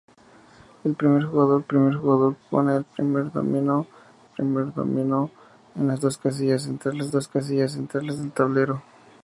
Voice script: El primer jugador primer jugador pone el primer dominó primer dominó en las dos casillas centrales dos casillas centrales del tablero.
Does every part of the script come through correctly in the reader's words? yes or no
yes